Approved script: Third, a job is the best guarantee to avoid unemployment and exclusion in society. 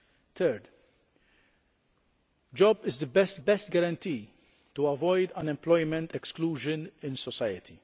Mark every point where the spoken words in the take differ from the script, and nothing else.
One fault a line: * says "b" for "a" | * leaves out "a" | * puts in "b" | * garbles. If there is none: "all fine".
* puts in "best"
* leaves out "and"